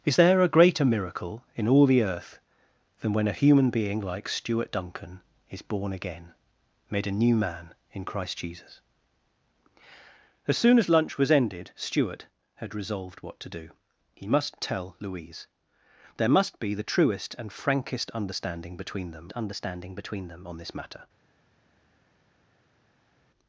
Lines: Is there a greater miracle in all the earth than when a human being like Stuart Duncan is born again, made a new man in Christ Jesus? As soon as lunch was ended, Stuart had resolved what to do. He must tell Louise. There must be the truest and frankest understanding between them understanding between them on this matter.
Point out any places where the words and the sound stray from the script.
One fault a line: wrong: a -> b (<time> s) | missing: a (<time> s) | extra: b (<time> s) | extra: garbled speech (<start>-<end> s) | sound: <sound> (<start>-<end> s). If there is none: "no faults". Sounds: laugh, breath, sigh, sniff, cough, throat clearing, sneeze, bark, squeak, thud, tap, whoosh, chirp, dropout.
no faults